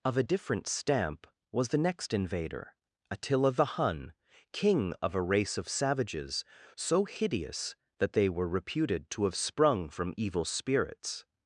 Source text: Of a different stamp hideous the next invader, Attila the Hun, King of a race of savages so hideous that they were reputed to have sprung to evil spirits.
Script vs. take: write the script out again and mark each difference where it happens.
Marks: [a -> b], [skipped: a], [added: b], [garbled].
Of a different stamp [hideous -> was] the next invader, Attila the Hun, King of a race of savages so hideous that they were reputed to have sprung [to -> from] evil spirits.